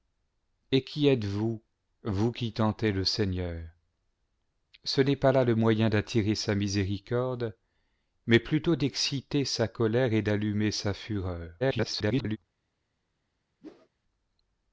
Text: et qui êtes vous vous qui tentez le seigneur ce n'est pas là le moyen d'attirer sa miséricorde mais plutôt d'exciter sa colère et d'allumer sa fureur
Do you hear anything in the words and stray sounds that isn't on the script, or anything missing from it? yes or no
yes